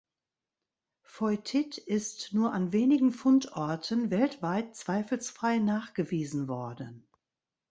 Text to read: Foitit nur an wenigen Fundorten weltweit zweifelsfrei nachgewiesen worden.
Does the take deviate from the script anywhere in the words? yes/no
yes